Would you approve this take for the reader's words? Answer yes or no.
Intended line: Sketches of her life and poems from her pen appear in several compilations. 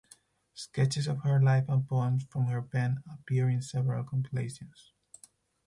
yes